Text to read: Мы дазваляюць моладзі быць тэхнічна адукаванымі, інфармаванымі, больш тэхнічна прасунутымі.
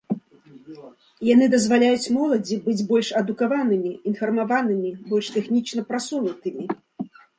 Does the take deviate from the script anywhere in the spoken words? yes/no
yes